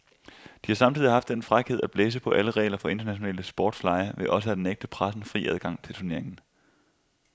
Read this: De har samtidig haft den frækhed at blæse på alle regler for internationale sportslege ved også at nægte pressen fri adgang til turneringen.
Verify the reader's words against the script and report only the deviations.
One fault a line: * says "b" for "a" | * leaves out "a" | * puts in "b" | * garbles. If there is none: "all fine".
all fine